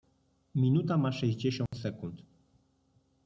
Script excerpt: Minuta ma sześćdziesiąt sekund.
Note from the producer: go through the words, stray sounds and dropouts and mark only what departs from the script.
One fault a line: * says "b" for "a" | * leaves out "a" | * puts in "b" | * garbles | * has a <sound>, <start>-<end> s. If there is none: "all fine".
* has a dropout, 1.7-1.7 s